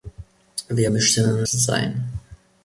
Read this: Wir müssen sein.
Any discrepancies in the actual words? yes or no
no